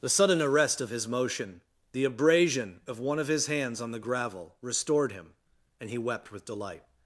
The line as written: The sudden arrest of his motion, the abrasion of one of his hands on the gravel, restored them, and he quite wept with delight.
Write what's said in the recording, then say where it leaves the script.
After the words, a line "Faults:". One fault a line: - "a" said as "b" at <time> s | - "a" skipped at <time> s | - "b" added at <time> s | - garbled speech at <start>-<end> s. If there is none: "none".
The sudden arrest of his motion, the abrasion of one of his hands on the gravel, restored him, and he wept with delight.
Faults:
- "them" said as "him" at 5.1 s
- "quite" skipped at 6.0 s